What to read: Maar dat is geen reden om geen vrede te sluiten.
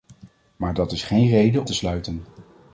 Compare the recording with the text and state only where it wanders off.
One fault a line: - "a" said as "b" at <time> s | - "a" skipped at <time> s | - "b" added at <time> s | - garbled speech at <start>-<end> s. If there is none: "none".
- "om geen vrede" skipped at 1.6 s